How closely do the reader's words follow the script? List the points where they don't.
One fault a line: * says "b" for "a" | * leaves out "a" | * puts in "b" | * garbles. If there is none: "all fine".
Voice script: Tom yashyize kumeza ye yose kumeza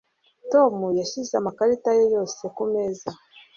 * says "amakarita" for "kumeza"